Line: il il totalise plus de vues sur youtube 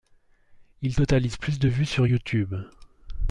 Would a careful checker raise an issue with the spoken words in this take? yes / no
yes